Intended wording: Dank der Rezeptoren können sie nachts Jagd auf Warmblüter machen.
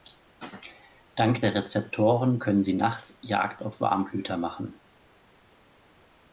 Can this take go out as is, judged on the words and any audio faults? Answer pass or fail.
pass